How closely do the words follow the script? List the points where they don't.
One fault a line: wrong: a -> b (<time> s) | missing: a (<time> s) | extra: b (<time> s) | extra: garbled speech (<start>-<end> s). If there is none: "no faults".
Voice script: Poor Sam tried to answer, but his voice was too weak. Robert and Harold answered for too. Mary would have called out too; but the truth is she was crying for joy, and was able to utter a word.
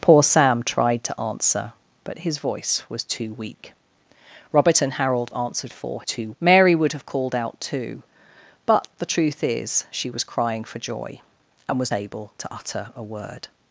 no faults